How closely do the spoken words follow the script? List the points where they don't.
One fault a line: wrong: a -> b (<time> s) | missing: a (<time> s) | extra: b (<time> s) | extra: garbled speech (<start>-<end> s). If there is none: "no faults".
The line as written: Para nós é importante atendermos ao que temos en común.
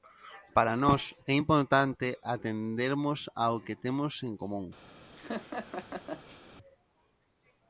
no faults